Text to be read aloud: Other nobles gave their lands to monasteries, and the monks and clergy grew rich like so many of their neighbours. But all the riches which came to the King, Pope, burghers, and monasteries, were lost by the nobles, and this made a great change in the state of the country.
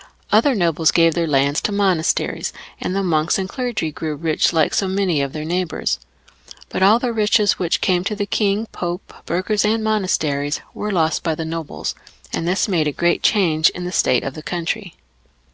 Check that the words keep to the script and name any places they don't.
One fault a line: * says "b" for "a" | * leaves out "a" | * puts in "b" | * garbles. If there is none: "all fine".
all fine